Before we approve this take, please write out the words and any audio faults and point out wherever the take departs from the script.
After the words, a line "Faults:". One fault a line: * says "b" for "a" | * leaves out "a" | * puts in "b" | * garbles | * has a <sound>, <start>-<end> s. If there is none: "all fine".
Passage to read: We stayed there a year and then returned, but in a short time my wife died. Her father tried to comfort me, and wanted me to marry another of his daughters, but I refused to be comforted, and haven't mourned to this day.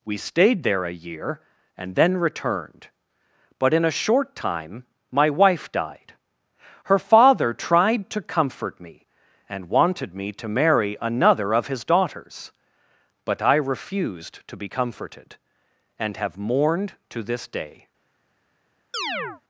We stayed there a year and then returned, but in a short time my wife died. Her father tried to comfort me, and wanted me to marry another of his daughters, but I refused to be comforted, and have mourned to this day.
Faults:
* says "have" for "haven't"
* has a chirp, 18.9-19.4 s